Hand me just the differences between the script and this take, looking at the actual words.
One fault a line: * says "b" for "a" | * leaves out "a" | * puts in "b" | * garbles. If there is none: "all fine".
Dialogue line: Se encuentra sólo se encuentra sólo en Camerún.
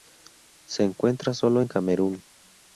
* leaves out "se encuentra sólo"